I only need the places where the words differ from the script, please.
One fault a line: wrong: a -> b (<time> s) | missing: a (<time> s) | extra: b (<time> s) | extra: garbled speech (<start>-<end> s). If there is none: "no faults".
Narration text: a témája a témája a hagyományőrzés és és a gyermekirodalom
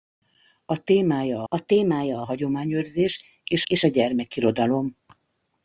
no faults